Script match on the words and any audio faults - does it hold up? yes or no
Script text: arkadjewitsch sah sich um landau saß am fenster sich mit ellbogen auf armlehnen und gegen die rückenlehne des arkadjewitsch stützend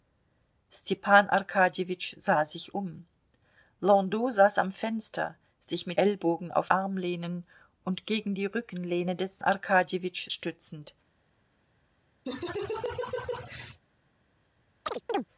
no